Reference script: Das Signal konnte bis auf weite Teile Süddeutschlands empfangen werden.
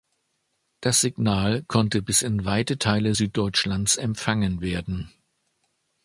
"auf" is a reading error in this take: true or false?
true